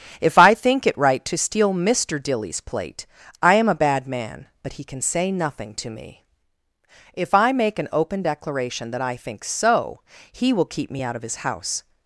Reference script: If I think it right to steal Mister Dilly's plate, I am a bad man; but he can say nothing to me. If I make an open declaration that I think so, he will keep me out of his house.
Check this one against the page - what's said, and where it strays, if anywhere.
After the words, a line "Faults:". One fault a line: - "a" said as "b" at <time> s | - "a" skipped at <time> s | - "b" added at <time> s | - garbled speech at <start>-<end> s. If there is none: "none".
If I think it right to steal Mister Dilly's plate, I am a bad man; but he can say nothing to me. If I make an open declaration that I think so, he will keep me out of his house.
Faults:
none